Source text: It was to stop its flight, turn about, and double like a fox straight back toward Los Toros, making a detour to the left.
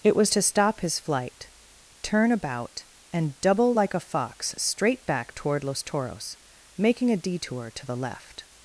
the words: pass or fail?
fail